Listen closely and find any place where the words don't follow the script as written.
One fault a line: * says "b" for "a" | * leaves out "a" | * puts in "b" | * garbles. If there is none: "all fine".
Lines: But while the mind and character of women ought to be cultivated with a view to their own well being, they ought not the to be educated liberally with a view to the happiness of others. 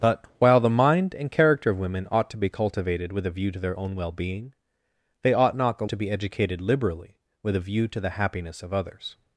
all fine